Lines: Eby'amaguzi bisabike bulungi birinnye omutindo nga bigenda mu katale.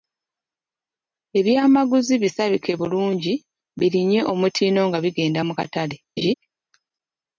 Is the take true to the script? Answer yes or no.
yes